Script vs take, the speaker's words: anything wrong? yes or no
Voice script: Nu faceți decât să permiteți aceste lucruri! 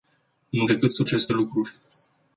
yes